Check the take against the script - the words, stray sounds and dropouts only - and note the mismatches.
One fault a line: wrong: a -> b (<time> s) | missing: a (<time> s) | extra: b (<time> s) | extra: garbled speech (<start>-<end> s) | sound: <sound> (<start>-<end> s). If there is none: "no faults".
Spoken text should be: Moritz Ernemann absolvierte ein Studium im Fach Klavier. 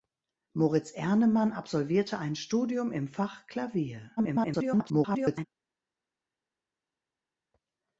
extra: garbled speech (4.2-5.5 s)